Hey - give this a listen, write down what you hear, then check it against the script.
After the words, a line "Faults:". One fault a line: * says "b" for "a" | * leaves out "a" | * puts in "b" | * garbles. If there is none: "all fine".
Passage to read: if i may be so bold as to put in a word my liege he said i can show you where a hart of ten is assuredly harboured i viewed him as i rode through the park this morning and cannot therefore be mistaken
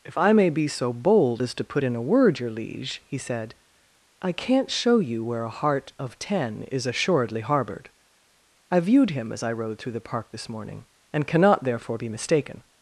if i may be so bold as to put in a word your liege he said i can't show you where a hart of ten is assuredly harboured i viewed him as i rode through the park this morning and cannot therefore be mistaken
Faults:
* says "your" for "my"
* says "can't" for "can"